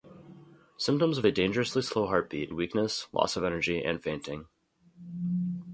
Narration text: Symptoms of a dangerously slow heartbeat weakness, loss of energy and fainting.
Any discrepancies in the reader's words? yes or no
no